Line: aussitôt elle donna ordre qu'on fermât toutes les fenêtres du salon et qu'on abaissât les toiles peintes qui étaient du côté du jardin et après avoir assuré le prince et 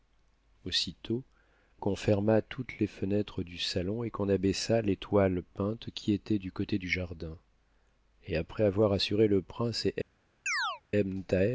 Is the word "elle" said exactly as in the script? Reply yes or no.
no